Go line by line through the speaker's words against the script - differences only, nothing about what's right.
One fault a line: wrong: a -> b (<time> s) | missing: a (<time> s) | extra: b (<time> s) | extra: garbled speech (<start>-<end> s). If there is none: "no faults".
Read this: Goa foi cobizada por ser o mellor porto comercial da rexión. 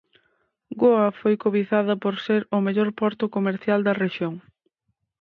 no faults